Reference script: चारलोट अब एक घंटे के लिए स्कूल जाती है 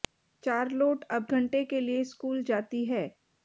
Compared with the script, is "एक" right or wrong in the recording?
wrong